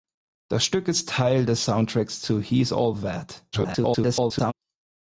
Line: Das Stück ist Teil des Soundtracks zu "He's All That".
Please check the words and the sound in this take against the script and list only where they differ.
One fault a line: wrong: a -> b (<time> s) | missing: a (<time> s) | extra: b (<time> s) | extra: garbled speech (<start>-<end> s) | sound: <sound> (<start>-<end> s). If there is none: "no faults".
extra: garbled speech (3.5-4.5 s)